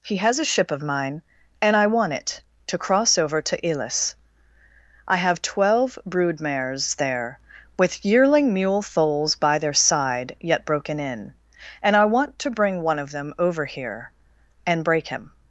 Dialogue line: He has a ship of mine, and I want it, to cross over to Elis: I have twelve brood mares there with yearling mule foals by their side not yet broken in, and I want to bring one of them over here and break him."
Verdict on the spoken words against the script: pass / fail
fail